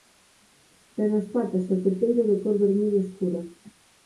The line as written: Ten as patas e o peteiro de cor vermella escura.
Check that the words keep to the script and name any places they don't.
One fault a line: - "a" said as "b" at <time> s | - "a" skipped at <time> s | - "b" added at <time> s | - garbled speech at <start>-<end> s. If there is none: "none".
none